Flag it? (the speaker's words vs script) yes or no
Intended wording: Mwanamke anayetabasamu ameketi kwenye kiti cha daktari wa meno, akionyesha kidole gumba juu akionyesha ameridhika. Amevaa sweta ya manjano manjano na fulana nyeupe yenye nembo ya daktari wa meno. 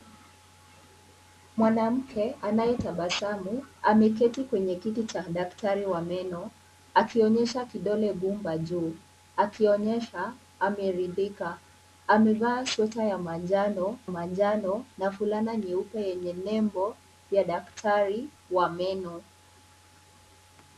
no